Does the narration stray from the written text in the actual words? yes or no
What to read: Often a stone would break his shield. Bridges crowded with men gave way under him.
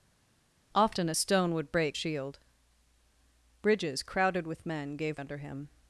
yes